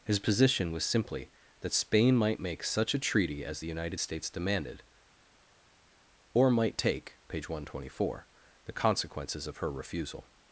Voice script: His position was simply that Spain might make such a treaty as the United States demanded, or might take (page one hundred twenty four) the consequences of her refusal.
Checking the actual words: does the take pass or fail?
pass